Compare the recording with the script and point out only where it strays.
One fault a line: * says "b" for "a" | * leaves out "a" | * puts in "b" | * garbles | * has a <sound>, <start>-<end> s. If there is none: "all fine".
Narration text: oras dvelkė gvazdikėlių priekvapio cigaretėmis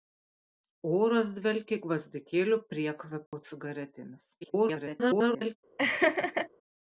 * has a dropout, 3.3-3.3 s
* garbles
* has a laugh, 5.8-6.5 s